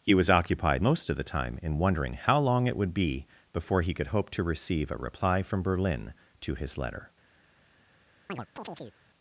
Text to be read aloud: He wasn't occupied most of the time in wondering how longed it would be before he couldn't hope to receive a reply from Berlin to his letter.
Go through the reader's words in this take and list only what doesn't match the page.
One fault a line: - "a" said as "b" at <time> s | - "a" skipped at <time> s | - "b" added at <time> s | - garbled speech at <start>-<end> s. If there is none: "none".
- "wasn't" said as "was" at 0.1 s
- "longed" said as "long" at 2.4 s
- "couldn't" said as "could" at 3.9 s